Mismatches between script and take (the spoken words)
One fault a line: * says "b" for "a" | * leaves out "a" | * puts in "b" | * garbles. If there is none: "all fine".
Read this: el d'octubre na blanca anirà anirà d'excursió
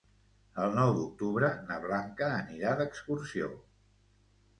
* puts in "nou"
* leaves out "anirà"